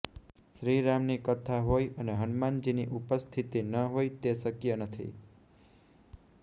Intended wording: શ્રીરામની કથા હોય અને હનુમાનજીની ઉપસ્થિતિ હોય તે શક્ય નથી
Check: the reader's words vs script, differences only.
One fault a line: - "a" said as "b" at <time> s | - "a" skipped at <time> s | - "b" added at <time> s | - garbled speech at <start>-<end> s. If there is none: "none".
- "ન" added at 3.6 s